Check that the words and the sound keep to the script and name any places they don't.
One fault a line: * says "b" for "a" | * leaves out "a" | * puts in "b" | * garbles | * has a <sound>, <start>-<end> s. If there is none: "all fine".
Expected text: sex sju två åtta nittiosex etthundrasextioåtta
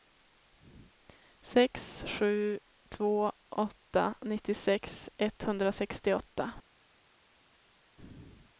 all fine